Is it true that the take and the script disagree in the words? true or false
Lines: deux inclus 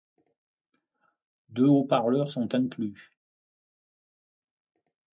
true